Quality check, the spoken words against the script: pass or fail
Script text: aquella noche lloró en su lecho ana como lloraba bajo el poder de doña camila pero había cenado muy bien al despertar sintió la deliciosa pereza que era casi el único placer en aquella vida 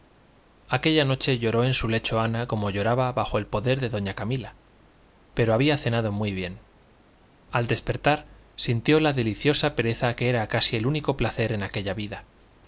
pass